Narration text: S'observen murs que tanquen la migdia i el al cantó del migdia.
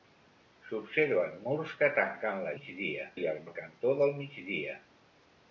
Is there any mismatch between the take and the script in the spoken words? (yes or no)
no